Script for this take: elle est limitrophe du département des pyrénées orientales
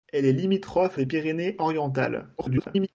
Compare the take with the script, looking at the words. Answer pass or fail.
fail